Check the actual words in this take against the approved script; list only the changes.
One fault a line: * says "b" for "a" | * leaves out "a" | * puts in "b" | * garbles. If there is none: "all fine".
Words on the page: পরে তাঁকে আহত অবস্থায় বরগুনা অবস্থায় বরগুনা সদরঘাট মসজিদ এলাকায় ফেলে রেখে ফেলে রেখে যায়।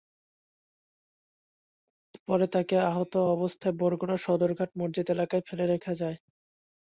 * leaves out "অবস্থায় বরগুনা"
* leaves out "ফেলে রেখে"